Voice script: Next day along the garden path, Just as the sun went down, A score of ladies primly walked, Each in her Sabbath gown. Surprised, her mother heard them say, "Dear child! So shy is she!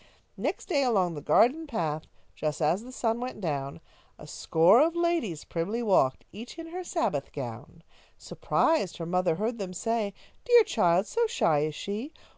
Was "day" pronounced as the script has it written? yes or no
yes